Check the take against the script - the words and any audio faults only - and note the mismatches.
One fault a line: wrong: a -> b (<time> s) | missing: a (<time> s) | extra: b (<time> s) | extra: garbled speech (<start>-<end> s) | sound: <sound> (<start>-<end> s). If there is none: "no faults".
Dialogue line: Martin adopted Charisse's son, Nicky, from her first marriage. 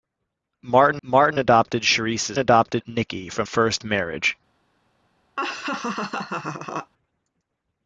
extra: martin (1.0 s)
wrong: son -> adopted (2.4 s)
missing: her (3.5 s)
sound: laugh (5.4-6.9 s)